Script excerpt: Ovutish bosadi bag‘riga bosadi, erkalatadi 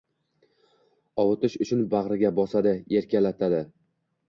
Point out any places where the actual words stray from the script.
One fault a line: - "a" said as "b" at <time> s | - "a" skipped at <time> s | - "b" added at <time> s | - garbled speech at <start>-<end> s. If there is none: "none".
- "bosadi" said as "uchun" at 1.7 s